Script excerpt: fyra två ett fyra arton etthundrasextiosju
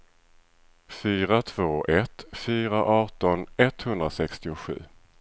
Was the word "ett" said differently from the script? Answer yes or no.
no